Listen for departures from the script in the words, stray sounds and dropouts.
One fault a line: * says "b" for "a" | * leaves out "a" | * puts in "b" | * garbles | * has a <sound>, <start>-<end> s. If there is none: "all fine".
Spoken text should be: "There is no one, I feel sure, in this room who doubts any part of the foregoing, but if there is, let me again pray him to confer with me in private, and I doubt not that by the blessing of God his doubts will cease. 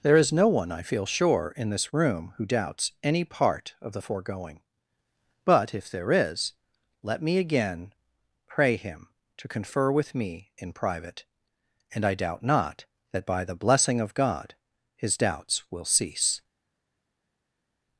all fine